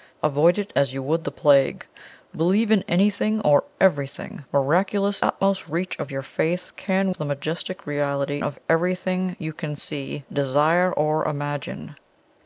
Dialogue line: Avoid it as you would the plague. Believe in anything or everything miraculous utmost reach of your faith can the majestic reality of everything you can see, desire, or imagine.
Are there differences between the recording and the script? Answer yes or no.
no